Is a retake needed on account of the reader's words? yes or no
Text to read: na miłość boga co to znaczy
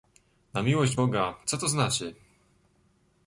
no